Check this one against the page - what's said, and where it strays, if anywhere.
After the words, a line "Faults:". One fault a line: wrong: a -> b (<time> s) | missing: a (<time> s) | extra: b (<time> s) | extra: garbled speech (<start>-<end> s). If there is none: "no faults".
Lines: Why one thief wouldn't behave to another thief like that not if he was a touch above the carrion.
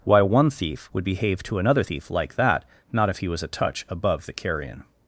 Why one thief would behave to another thief like that not if he was a touch above the carrion.
Faults:
wrong: wouldn't -> would (0.9 s)